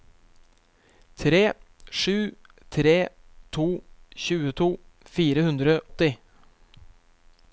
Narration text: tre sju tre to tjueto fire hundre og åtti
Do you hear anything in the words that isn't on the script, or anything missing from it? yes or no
yes